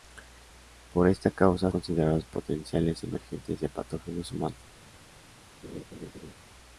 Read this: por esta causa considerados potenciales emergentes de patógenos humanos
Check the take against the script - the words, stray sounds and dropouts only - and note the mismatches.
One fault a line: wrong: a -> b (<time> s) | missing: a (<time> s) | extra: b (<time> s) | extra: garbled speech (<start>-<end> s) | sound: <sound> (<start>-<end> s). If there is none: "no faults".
sound: laugh (5.6-6.3 s)